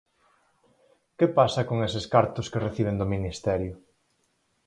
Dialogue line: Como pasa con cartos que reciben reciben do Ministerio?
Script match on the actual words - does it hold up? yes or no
no